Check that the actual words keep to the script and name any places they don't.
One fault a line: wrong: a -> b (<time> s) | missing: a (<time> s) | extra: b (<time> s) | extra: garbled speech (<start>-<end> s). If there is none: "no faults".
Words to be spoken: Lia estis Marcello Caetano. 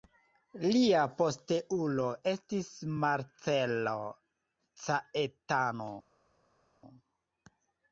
extra: posteulo (1.2 s)